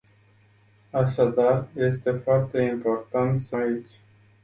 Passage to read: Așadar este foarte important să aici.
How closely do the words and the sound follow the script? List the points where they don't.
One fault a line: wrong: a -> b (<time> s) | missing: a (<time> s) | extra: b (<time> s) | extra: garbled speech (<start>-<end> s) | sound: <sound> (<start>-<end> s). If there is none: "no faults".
no faults